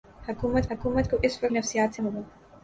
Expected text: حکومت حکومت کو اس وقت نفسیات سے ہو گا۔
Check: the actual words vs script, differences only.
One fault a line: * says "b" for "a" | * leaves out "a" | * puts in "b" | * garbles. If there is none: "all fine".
all fine